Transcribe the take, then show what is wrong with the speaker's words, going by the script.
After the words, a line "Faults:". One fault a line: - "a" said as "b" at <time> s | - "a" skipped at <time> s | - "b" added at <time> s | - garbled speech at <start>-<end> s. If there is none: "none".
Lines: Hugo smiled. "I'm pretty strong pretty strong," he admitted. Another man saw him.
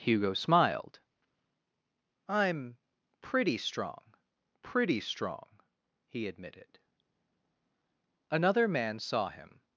Hugo smiled. "I'm pretty strong pretty strong," he admitted. Another man saw him.
Faults:
none